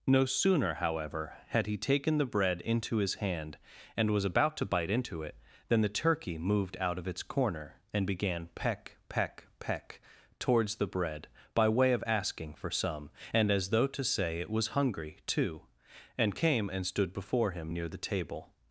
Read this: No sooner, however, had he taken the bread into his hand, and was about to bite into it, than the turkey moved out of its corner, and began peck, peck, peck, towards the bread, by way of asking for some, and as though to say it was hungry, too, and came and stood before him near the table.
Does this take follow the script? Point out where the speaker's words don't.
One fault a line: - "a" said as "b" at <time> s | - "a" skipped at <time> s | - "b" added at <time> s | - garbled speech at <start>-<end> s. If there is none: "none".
none